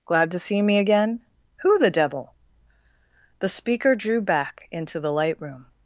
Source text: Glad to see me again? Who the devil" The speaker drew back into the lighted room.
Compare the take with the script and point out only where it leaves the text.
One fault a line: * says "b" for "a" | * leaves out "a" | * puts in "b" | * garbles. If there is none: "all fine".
* says "light" for "lighted"